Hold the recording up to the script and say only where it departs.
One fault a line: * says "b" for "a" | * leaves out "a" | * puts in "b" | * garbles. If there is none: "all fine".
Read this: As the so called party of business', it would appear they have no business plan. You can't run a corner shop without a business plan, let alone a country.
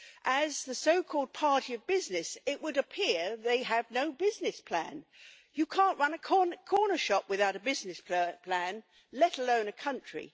all fine